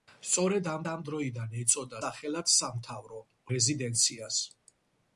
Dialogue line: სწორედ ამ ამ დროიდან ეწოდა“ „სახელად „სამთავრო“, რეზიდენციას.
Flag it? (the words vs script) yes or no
no